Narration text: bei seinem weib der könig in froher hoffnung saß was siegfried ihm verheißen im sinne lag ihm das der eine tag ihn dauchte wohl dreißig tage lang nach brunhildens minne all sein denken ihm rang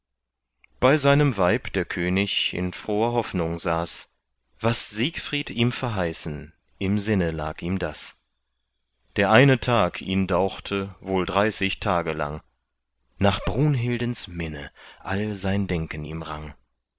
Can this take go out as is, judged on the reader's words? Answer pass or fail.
pass